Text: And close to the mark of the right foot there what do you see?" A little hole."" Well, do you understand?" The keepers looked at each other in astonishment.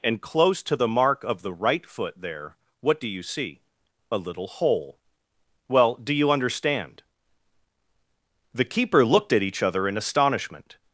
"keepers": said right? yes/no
no